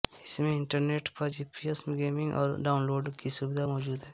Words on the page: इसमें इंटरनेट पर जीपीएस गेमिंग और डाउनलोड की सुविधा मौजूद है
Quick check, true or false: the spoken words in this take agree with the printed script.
true